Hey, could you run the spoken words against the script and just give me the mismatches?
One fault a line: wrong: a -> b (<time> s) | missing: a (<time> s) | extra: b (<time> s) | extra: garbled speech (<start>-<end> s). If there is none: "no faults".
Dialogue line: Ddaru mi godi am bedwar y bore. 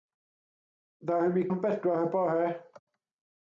missing: godi (1.4 s)